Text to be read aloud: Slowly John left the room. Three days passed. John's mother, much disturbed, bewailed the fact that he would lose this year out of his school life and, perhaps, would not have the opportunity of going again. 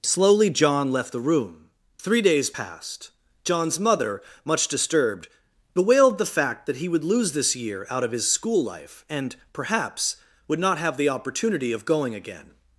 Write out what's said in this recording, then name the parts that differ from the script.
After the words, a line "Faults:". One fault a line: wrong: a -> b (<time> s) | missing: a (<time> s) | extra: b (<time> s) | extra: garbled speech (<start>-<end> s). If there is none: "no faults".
Slowly John left the room. Three days passed. John's mother, much disturbed, bewailed the fact that he would lose this year out of his school life and, perhaps, would not have the opportunity of going again.
Faults:
no faults